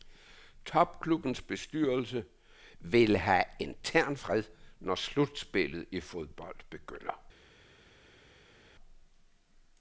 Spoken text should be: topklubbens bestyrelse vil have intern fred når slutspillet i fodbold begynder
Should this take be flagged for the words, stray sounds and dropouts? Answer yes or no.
no